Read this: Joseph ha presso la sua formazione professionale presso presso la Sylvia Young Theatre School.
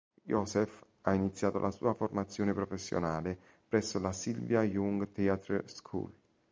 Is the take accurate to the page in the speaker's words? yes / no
no